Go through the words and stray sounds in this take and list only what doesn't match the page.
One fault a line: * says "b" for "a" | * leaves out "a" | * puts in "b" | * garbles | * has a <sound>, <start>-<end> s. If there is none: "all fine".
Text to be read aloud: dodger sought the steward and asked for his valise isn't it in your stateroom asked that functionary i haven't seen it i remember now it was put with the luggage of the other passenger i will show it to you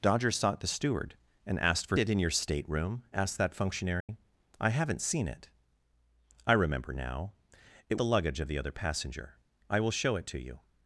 * leaves out "his valise isn't"
* has a dropout, 4.0-4.1 s
* leaves out "was put with"